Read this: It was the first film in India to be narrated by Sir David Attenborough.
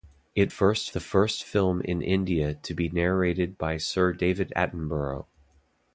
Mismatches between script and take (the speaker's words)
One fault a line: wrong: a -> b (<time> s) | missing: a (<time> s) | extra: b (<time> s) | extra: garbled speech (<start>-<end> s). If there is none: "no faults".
wrong: was -> first (0.5 s)